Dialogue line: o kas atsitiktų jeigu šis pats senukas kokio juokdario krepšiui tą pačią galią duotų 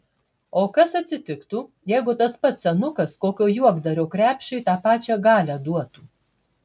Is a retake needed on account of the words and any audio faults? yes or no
yes